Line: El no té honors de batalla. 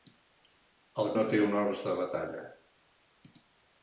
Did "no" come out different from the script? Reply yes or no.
no